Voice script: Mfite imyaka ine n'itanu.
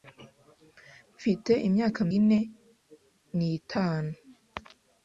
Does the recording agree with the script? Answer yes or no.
yes